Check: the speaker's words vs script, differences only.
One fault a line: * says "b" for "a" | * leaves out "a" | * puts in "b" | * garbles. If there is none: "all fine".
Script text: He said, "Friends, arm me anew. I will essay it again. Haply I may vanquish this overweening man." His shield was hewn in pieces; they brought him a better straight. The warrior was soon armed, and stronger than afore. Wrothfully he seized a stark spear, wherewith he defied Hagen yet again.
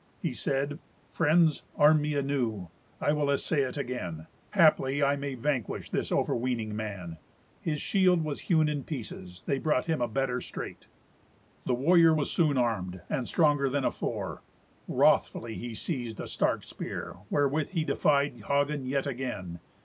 all fine